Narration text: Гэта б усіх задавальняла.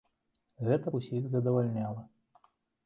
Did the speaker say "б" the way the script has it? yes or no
yes